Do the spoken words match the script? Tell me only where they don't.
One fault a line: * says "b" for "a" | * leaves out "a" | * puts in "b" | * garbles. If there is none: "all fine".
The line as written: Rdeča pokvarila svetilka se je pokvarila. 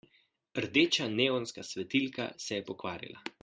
* says "neonska" for "pokvarila"